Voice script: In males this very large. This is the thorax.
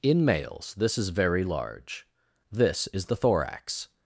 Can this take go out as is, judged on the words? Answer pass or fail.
fail